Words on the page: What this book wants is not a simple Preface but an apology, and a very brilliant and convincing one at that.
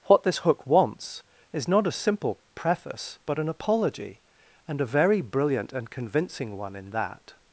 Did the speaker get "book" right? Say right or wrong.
wrong